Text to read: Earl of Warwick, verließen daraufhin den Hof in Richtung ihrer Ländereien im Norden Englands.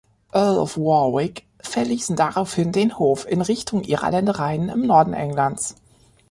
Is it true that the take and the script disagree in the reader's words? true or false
false